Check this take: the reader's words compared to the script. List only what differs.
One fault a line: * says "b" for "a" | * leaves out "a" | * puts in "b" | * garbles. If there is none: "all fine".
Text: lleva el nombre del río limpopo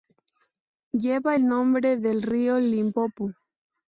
all fine